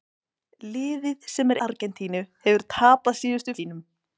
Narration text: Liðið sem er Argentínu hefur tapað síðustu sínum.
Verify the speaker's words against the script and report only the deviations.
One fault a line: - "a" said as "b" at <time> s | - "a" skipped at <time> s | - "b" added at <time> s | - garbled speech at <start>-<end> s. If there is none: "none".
none